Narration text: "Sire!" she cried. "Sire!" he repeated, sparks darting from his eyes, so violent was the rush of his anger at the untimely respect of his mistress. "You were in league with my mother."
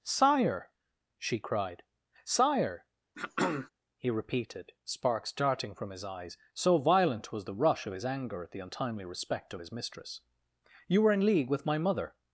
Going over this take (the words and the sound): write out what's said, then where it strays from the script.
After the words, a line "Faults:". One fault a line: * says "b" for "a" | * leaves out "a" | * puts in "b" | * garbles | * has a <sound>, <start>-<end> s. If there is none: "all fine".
"Sire!" she cried. "Sire!" he repeated, sparks darting from his eyes, so violent was the rush of his anger at the untimely respect of his mistress. "You were in league with my mother."
Faults:
* has a throat clearing, 3.1-3.7 s